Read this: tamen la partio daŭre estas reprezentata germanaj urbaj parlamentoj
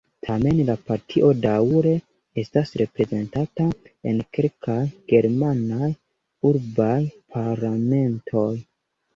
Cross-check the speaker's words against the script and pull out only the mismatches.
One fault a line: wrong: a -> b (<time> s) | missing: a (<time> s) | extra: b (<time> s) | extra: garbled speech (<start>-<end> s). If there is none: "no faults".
extra: en kelkaj (4.1 s)